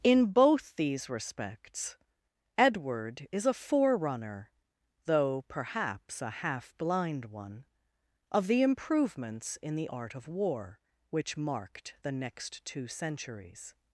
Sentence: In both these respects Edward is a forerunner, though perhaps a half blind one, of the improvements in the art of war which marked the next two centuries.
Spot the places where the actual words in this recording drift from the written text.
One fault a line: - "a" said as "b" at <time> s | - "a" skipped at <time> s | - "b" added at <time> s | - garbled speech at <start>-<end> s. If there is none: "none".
none